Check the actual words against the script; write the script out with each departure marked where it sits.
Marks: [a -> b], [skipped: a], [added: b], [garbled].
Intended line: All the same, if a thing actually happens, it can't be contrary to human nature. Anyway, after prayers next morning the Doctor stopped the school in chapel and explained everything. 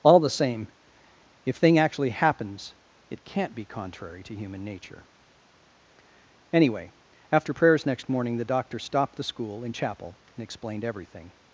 All the same, if [skipped: a] thing actually happens, it can't be contrary to human nature. Anyway, after prayers next morning the Doctor stopped the school in chapel and explained everything.